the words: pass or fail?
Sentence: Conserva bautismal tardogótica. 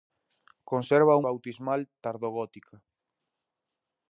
pass